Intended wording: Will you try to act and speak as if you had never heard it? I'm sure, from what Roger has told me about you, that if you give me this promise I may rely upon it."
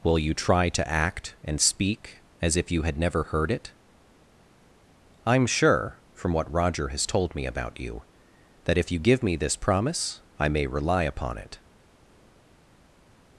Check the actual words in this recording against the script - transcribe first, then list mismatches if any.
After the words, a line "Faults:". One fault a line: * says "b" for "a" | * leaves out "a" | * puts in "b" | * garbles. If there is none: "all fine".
Will you try to act and speak as if you had never heard it? I'm sure, from what Roger has told me about you, that if you give me this promise I may rely upon it."
Faults:
all fine